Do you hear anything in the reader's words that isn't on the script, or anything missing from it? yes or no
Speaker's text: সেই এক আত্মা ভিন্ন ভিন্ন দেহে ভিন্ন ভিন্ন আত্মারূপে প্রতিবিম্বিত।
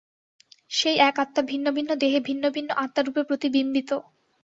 no